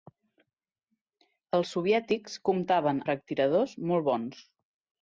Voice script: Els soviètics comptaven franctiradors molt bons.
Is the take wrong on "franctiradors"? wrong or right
right